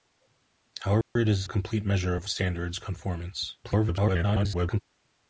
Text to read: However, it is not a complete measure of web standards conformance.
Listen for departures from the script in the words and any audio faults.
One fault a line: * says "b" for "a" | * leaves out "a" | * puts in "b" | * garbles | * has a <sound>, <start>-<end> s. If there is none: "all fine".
* has a dropout, 1.0-1.2 s
* leaves out "not"
* leaves out "web"
* garbles